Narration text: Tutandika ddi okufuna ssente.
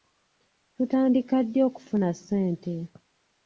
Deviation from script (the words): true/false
false